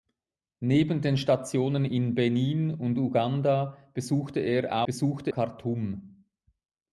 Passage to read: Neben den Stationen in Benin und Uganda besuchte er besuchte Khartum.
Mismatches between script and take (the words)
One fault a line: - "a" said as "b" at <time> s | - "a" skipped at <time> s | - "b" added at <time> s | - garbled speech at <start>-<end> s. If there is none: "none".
none